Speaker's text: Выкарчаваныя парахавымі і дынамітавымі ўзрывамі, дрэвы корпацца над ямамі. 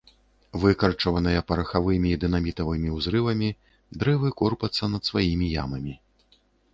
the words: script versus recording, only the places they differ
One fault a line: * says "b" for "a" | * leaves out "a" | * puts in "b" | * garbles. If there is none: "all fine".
* puts in "сваімі"